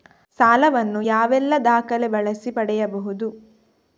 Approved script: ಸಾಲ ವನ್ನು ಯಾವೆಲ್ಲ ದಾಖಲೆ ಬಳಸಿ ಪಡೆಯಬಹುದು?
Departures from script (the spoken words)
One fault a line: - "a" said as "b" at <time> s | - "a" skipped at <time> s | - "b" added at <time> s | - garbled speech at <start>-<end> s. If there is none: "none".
none